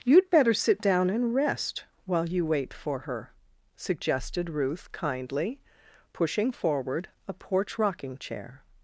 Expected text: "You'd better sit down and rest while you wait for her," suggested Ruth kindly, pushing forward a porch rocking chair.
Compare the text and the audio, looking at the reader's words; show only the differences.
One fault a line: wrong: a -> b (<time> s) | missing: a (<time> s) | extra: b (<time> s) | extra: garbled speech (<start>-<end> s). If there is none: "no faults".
no faults